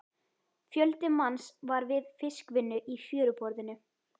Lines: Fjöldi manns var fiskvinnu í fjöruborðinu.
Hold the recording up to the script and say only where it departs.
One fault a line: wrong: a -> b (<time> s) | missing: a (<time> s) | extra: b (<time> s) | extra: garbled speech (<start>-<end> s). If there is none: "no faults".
extra: við (1.9 s)